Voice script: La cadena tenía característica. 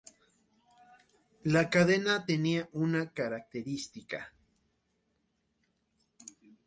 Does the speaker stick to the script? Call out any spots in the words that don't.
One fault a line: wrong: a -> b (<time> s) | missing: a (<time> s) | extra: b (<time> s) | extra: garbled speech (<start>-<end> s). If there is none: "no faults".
extra: una (2.7 s)